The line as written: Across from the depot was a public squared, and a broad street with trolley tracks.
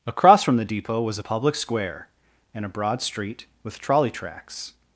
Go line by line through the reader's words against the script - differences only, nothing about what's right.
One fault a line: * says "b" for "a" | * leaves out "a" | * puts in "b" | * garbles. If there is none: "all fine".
* says "square" for "squared"